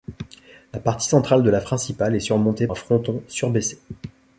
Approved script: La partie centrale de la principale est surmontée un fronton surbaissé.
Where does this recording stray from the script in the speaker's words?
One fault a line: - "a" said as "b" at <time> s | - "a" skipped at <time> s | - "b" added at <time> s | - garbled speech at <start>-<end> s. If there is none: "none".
none